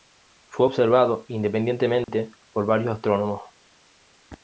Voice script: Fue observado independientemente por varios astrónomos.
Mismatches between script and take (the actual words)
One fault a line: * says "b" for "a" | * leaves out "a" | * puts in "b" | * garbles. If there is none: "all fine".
all fine